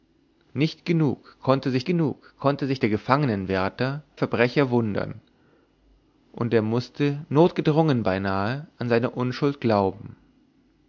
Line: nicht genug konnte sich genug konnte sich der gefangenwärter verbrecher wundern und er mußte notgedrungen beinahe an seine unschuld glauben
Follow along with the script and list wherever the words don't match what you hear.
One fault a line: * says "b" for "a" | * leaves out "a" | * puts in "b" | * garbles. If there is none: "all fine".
all fine